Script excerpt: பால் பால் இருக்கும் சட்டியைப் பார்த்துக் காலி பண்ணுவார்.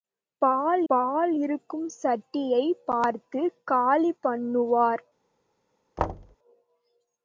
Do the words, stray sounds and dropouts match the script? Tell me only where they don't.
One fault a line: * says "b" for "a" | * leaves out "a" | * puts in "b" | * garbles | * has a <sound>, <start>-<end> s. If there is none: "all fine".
* has a thud, 6.0-6.4 s